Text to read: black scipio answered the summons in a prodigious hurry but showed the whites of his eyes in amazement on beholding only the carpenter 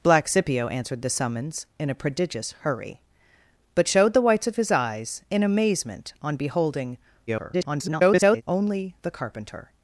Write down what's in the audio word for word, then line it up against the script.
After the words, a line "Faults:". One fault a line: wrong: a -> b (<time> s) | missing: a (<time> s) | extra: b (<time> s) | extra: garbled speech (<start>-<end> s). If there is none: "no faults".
black scipio answered the summons in a prodigious hurry but showed the whites of his eyes in amazement on beholding [garbled] only the carpenter
Faults:
extra: garbled speech (7.3-8.4 s)